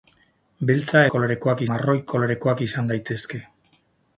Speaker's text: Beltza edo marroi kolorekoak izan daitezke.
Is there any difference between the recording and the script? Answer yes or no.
yes